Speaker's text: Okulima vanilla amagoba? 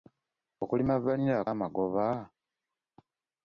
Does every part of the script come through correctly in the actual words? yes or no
yes